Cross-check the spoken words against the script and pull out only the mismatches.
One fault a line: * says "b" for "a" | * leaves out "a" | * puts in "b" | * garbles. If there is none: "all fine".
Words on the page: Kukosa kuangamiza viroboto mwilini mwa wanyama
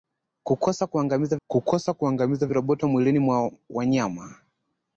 * puts in "kukosa kuangamiza"